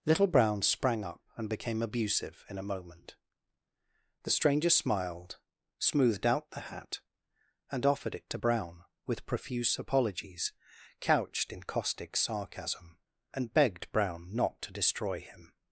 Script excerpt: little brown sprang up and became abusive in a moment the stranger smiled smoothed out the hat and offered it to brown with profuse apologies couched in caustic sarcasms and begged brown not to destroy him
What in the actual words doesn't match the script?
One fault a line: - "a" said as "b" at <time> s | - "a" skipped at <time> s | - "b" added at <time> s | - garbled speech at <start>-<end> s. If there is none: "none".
- "sarcasms" said as "sarcasm" at 12.2 s